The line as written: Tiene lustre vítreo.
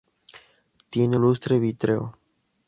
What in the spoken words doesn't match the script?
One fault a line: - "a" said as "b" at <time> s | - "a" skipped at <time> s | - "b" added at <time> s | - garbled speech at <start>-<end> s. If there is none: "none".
none